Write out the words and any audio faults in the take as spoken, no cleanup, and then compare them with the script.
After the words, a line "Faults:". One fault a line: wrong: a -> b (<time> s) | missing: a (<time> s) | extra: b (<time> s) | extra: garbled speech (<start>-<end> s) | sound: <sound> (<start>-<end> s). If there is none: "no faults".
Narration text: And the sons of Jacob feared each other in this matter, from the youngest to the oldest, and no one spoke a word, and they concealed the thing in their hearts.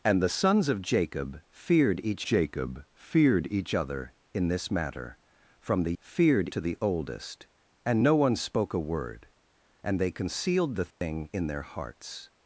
And the sons of Jacob feared each Jacob feared each other in this matter, from the feared to the oldest, and no one spoke a word, and they concealed the thing in their hearts.
Faults:
extra: Jacob feared each (2.2 s)
wrong: youngest -> feared (6.0 s)
sound: dropout (10.9-11.0 s)